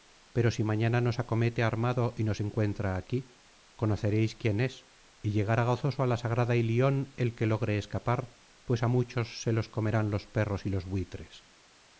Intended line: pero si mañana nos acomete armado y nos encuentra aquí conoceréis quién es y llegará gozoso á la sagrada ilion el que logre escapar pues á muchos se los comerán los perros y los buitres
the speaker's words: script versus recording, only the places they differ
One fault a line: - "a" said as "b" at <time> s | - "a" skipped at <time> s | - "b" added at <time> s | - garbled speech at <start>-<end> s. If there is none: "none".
none